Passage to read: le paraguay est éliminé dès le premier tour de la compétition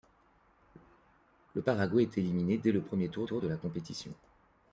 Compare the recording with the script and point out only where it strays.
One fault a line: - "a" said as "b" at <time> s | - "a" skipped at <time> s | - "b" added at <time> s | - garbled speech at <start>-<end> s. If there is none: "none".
- "tour" added at 3.2 s